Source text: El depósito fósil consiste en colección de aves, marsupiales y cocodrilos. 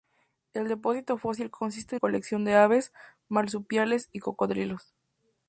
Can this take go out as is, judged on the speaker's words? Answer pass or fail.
pass